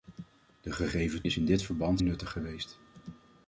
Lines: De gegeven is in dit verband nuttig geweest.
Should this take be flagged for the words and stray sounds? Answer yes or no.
no